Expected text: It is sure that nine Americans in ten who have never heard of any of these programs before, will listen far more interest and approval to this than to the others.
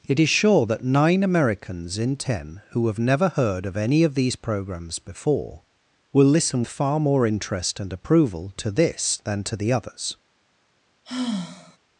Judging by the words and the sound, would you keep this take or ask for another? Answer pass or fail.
fail